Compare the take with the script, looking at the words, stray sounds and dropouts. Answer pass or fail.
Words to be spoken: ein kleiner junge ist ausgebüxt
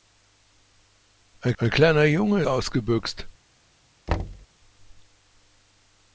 fail